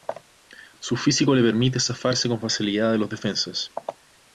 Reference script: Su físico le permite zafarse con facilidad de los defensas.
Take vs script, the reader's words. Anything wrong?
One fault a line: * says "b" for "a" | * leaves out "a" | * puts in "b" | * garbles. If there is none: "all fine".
all fine